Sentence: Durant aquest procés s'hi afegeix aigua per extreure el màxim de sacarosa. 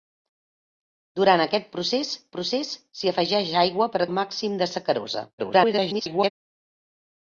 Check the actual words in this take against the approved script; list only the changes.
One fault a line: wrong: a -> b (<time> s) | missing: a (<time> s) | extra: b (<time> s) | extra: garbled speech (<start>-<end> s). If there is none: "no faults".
extra: procés (2.4 s)
missing: extreure (4.0 s)
extra: garbled speech (5.4-6.3 s)